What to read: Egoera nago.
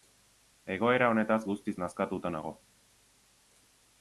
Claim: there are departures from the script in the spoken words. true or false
true